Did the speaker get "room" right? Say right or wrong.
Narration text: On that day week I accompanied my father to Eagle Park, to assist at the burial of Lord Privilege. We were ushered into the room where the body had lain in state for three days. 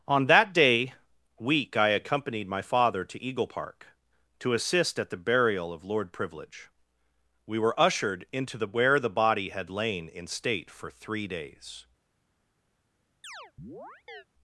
wrong